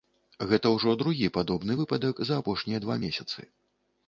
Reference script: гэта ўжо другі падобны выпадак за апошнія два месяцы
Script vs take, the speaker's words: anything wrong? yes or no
no